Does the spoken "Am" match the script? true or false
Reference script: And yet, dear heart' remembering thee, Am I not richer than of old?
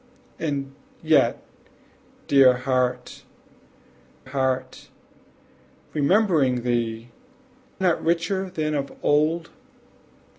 false